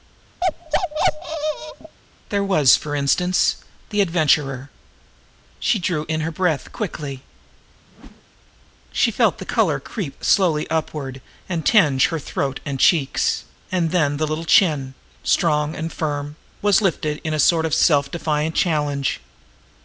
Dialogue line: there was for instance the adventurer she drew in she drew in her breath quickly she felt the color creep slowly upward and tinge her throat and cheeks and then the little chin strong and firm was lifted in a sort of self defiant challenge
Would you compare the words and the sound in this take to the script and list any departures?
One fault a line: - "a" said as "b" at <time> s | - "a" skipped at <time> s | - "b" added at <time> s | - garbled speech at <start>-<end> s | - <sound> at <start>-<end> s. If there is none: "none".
- bark at 0.4-2.0 s
- "she drew in" skipped at 6.2 s
- whoosh at 7.9-8.2 s